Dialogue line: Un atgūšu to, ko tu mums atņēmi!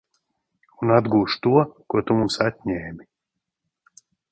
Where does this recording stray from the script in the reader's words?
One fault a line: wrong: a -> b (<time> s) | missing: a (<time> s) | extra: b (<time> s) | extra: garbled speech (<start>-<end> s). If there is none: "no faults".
no faults